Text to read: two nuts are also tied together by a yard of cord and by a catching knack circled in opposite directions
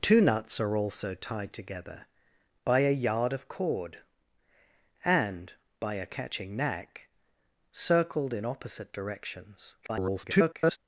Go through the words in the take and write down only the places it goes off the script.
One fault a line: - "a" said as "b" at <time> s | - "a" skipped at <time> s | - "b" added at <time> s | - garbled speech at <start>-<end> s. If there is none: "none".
- garbled speech at 9.8-10.8 s